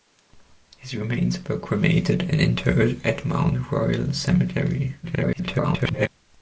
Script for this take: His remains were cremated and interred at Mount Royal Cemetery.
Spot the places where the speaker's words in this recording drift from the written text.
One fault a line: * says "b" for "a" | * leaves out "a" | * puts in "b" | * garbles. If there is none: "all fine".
* garbles